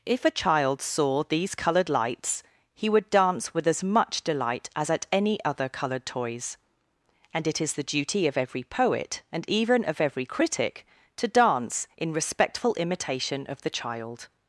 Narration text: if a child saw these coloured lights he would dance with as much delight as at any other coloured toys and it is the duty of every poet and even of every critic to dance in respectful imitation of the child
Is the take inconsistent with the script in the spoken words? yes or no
no